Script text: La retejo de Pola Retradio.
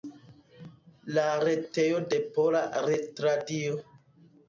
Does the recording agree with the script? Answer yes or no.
yes